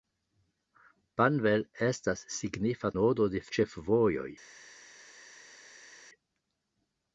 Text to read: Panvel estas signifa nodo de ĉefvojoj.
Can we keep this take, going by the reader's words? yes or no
yes